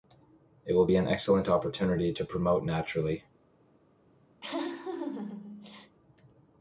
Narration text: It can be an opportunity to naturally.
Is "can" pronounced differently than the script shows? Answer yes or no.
yes